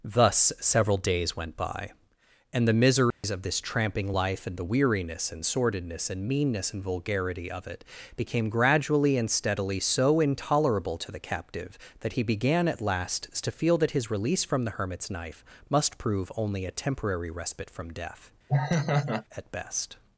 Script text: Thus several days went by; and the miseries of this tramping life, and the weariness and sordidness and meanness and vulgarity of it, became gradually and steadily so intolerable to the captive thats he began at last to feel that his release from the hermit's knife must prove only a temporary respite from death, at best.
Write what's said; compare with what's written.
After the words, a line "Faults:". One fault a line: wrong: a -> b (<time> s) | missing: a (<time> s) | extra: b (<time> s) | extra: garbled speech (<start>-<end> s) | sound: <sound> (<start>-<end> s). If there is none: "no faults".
Thus several days went by; and the miseries of this tramping life, and the weariness and sordidness and meanness and vulgarity of it, became gradually and steadily so intolerable to the captive that he began at last to feel that his release from the hermit's knife must prove only a temporary respite from death, at best.
Faults:
sound: dropout (3.1-3.2 s)
wrong: thats -> that (12.0 s)
sound: laugh (18.5-19.2 s)